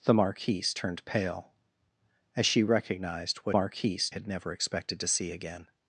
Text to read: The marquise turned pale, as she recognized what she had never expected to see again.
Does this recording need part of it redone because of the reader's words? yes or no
yes